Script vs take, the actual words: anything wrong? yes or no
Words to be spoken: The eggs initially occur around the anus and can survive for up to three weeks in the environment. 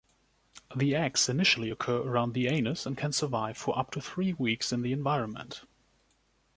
no